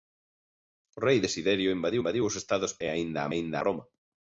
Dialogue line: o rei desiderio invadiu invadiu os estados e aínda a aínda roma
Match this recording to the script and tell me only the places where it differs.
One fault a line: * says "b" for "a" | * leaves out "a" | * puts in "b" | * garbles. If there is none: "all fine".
all fine